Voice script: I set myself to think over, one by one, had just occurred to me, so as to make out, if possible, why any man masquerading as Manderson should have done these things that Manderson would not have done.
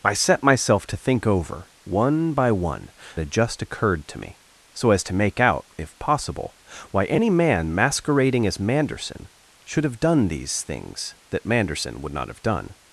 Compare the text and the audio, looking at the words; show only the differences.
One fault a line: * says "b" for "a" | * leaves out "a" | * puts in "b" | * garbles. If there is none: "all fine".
all fine